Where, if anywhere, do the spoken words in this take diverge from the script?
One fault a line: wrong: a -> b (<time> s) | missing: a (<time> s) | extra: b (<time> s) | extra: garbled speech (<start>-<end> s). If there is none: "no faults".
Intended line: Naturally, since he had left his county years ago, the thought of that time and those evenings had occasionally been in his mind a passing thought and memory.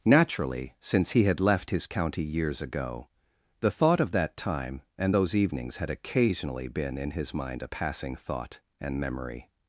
no faults